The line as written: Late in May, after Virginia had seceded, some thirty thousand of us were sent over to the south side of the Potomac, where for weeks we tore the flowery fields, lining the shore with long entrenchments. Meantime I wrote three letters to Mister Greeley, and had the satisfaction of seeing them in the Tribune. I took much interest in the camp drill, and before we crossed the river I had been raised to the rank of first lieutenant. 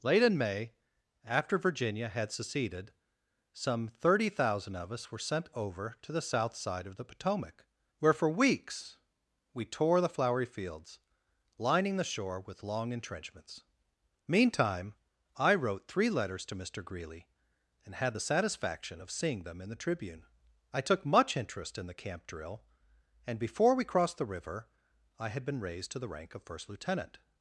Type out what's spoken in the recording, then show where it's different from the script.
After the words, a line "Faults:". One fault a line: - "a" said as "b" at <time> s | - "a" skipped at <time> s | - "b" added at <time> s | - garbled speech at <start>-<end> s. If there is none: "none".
Late in May, after Virginia had seceded, some thirty thousand of us were sent over to the south side of the Potomac, where for weeks we tore the flowery fields, lining the shore with long entrenchments. Meantime I wrote three letters to Mister Greeley, and had the satisfaction of seeing them in the Tribune. I took much interest in the camp drill, and before we crossed the river I had been raised to the rank of first lieutenant.
Faults:
none